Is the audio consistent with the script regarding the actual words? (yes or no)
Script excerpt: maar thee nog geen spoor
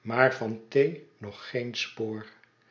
no